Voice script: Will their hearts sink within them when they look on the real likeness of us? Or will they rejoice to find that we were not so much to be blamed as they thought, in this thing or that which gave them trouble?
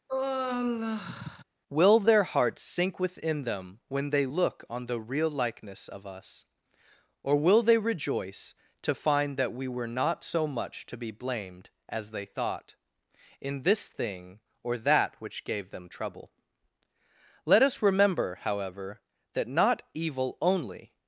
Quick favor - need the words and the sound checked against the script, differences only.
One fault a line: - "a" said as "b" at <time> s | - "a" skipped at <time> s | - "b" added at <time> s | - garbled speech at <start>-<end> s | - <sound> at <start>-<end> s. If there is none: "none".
- sigh at 0.1-1.4 s
- "Let us remember however that not evil only" added at 17.5 s